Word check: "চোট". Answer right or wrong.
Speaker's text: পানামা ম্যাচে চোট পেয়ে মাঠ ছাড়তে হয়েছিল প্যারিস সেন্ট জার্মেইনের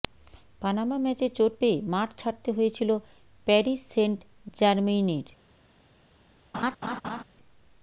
right